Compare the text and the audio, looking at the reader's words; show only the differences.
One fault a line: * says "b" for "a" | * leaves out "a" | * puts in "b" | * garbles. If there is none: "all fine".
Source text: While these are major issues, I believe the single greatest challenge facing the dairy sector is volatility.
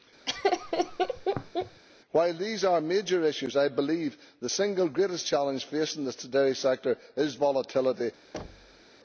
all fine